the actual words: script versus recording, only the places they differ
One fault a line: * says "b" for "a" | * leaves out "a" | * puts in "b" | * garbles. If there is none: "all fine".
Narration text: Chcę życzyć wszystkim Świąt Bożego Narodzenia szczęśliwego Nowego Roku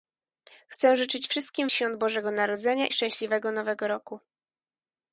all fine